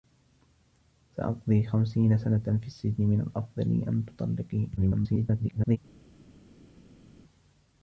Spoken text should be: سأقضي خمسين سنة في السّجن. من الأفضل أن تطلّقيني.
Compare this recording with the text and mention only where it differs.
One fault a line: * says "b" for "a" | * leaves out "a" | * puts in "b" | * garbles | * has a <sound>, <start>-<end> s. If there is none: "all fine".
* garbles